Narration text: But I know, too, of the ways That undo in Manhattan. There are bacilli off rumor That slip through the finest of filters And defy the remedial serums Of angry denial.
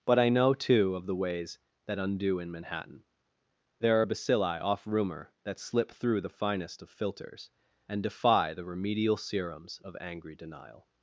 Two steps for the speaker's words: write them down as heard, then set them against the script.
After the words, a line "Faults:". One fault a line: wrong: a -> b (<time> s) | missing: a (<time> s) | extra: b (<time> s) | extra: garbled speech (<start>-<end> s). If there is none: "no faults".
But I know, too, of the ways That undo in Manhattan. There are bacilli off rumor That slip through the finest of filters And defy the remedial serums Of angry denial.
Faults:
no faults